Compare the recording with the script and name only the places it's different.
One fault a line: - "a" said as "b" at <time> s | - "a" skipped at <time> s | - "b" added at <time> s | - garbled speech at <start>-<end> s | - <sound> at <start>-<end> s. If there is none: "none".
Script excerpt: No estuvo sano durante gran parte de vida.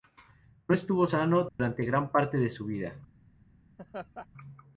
- dropout at 1.5-1.6 s
- "su" added at 2.5 s
- laugh at 3.8-4.3 s